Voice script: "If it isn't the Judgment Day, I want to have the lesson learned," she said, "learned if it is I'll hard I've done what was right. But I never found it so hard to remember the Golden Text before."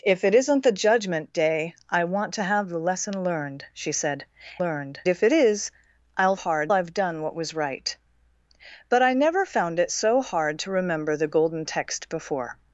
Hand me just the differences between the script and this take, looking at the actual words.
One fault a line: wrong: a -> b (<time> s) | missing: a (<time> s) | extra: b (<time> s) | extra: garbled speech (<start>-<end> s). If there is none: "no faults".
no faults